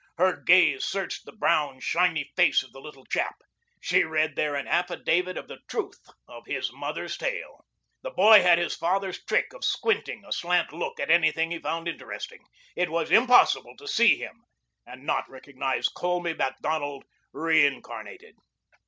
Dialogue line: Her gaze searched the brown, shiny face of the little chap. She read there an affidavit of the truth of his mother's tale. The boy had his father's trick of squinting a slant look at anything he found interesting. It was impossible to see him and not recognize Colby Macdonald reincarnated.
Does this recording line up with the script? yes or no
yes